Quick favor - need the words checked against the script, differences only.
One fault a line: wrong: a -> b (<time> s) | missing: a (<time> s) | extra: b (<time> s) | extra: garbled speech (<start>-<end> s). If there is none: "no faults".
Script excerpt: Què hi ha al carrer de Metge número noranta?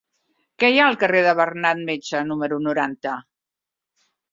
extra: Bernat (1.4 s)